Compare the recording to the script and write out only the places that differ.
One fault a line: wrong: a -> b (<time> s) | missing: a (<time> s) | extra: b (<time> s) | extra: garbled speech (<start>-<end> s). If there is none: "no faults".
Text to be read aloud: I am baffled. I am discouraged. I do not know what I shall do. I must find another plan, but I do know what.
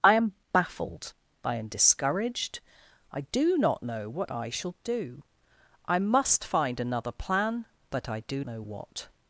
no faults